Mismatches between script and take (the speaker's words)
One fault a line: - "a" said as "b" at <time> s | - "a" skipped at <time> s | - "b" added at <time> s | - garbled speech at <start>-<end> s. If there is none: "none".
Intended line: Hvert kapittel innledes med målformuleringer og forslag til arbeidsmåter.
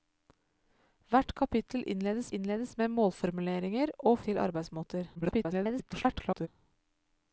- "innledes" added at 2.4 s
- "forslag" skipped at 4.2 s
- garbled speech at 5.1-6.5 s